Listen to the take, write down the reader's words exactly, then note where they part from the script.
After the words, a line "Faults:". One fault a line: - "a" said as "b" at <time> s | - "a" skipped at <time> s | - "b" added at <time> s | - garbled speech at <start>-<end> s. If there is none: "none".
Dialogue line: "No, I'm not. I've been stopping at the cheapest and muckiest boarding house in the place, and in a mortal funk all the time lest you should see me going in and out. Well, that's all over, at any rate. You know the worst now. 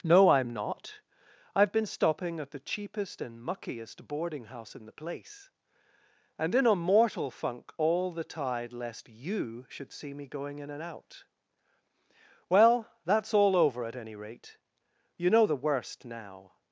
"No, I'm not. I've been stopping at the cheapest and muckiest boarding house in the place, and in a mortal funk all the tide lest you should see me going in and out. Well, that's all over, at any rate. You know the worst now.
Faults:
- "time" said as "tide" at 8.2 s